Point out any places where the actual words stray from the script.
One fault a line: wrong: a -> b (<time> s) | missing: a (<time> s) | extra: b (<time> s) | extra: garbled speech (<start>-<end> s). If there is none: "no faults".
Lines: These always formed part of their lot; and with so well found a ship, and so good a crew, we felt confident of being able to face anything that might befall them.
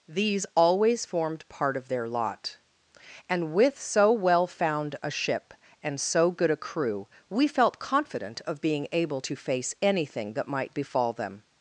no faults